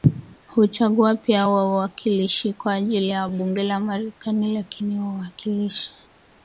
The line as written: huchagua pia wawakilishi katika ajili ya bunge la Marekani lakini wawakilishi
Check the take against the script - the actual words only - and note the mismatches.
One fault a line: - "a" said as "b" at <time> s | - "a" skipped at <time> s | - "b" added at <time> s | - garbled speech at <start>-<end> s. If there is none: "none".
- "katika" said as "kwa" at 2.5 s